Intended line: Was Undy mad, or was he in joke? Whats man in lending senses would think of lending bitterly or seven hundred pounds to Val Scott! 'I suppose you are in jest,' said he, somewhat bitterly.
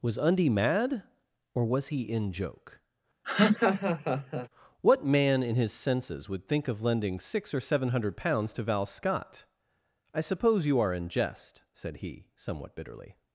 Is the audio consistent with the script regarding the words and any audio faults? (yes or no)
no